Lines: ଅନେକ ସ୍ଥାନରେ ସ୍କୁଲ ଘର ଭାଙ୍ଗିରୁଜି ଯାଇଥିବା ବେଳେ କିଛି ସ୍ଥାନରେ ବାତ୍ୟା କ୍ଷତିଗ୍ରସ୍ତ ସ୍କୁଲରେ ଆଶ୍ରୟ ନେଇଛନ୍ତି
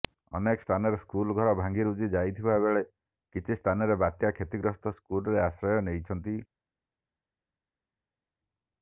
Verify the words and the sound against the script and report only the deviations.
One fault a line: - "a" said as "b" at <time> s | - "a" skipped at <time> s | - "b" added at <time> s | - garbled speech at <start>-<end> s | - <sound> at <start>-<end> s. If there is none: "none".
none